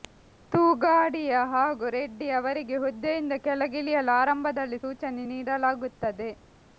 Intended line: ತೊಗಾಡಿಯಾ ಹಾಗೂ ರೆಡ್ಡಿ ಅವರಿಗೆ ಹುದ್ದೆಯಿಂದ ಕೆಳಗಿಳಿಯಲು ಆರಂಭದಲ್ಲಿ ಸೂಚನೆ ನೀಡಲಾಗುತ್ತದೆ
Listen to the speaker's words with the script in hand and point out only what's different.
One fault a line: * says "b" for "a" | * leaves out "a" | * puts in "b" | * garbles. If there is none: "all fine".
all fine